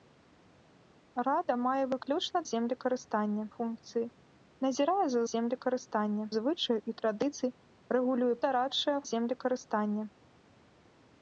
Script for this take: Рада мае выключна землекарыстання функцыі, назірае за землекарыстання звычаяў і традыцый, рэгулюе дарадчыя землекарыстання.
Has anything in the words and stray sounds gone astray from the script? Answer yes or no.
no